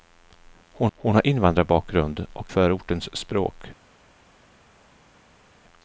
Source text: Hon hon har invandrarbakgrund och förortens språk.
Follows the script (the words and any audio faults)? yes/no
yes